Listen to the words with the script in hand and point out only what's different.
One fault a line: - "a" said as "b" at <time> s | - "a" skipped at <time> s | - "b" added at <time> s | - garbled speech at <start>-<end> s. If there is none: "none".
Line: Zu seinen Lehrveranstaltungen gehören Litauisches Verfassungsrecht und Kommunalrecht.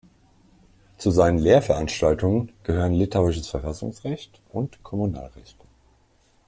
none